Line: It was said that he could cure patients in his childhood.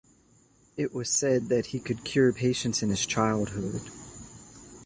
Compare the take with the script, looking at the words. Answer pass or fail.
pass